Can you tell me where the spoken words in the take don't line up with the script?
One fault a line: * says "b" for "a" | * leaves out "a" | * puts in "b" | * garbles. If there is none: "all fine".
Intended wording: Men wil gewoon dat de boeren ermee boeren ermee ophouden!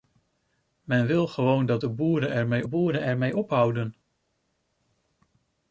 all fine